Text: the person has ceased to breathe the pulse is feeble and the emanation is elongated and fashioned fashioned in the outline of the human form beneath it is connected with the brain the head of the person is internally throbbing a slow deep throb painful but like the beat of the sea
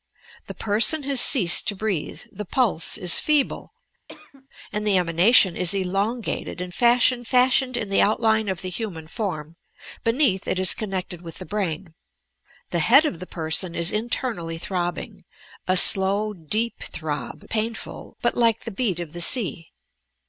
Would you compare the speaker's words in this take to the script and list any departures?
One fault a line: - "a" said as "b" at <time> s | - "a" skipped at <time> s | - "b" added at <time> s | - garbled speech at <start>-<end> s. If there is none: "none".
none